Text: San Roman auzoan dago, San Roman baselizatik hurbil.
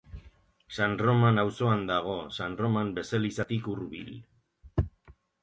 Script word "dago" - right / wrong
right